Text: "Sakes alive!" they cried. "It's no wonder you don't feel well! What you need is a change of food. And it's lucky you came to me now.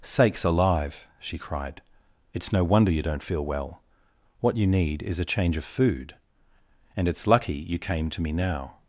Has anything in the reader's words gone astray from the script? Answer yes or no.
yes